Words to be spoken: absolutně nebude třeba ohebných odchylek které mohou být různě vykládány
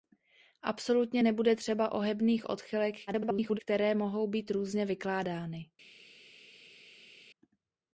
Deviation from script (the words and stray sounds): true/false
true